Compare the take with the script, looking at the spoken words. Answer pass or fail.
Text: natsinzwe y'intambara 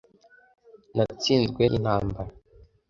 pass